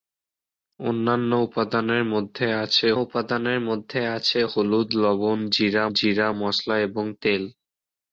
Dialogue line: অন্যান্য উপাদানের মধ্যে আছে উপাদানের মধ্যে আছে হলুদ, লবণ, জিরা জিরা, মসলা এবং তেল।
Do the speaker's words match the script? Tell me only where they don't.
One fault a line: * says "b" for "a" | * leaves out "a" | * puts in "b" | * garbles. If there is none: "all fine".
all fine